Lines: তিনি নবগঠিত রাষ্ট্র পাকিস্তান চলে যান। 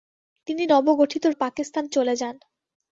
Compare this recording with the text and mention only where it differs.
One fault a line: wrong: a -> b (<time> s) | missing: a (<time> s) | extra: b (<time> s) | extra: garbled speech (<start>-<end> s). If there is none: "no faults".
missing: রাষ্ট্র (1.2 s)